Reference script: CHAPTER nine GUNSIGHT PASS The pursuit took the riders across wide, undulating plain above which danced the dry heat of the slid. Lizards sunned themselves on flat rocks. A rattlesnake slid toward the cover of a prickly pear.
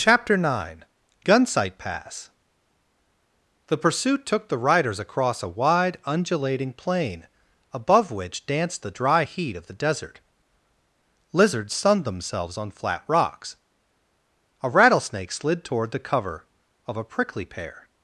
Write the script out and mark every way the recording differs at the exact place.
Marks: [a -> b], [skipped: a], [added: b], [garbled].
CHAPTER nine GUNSIGHT PASS The pursuit took the riders across [added: a] wide, undulating plain above which danced the dry heat of the [slid. -> desert] Lizards sunned themselves on flat rocks. A rattlesnake slid toward the cover of a prickly pear.